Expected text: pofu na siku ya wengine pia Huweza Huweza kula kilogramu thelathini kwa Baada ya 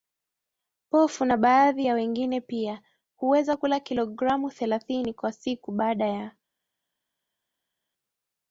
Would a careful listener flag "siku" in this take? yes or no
yes